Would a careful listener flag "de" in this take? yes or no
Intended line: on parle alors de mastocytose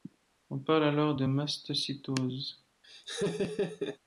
no